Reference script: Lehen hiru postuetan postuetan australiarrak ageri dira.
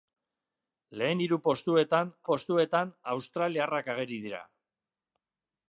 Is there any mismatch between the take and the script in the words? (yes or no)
no